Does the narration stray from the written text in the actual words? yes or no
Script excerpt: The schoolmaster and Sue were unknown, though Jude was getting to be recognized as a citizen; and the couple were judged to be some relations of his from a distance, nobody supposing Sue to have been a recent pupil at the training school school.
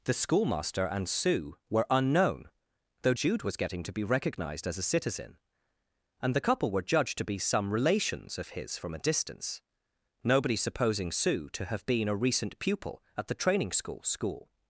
no